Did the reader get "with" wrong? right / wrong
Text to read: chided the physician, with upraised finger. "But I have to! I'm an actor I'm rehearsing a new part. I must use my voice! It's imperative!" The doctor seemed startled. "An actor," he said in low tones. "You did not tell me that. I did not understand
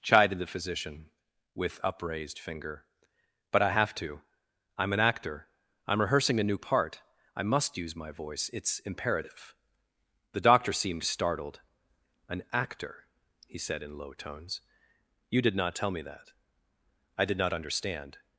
right